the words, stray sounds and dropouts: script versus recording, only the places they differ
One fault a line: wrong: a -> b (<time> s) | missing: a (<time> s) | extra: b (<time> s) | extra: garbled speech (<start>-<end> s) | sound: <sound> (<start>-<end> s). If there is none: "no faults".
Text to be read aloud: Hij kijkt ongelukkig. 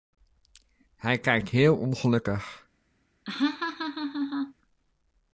extra: heel (1.5 s)
sound: laugh (3.3-4.5 s)